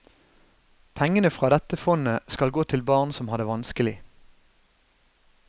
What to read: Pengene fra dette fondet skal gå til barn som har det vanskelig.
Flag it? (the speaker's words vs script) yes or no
no